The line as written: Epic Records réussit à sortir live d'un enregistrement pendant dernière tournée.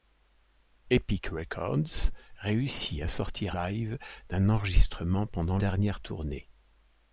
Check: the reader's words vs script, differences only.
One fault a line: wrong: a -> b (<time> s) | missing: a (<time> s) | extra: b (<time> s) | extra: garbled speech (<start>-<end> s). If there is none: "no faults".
no faults